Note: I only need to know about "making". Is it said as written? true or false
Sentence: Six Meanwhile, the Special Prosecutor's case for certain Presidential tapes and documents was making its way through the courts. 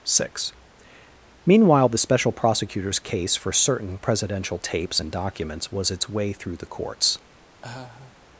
false